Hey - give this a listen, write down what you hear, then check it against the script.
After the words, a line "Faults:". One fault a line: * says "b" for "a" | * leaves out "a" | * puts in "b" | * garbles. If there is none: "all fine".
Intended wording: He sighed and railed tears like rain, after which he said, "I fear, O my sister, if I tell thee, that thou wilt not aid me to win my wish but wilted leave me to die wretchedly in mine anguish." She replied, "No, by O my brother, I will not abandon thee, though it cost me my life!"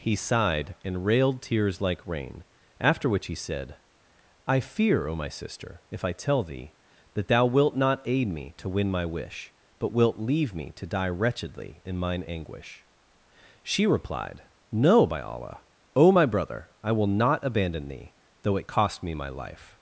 He sighed and railed tears like rain, after which he said, "I fear, O my sister, if I tell thee, that thou wilt not aid me to win my wish but wilt leave me to die wretchedly in mine anguish." She replied, "No, by Allah, O my brother, I will not abandon thee, though it cost me my life!"
Faults:
* says "wilt" for "wilted"
* puts in "Allah"